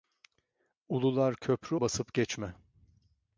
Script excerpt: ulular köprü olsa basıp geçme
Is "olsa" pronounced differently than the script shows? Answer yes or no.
yes